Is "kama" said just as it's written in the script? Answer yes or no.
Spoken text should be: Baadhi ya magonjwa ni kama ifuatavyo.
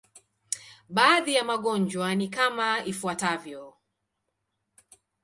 yes